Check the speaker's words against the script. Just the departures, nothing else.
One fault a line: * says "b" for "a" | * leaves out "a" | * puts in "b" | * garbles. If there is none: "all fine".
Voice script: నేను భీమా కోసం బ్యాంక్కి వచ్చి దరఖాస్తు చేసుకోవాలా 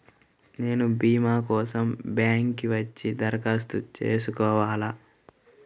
all fine